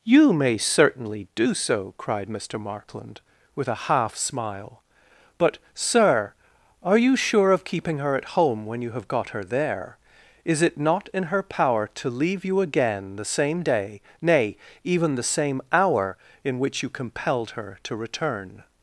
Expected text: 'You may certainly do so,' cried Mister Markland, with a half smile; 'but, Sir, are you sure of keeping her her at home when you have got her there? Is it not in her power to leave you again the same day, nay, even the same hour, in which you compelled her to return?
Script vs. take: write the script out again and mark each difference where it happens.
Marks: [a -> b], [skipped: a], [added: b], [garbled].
'You may certainly do so,' cried Mister Markland, with a half smile; 'but, Sir, are you sure of keeping her [skipped: her] at home when you have got her there? Is it not in her power to leave you again the same day, nay, even the same hour, in which you compelled her to return?